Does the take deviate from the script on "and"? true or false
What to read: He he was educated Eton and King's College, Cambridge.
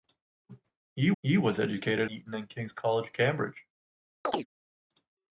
false